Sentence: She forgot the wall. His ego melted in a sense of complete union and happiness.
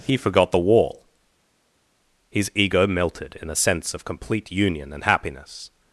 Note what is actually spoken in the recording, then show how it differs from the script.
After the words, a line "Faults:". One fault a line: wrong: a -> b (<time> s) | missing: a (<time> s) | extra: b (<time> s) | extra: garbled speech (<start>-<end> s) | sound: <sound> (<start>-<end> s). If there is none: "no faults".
He forgot the wall. His ego melted in a sense of complete union and happiness.
Faults:
wrong: She -> He (0.1 s)